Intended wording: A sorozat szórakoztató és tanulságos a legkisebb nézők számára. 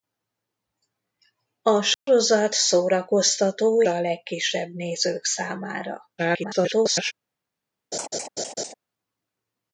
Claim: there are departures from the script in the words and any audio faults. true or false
true